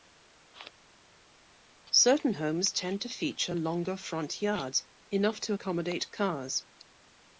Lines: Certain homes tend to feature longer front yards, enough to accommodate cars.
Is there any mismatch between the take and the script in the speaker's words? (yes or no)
no